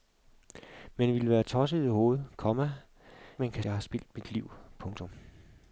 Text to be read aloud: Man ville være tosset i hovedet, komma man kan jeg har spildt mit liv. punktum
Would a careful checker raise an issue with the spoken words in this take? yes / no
no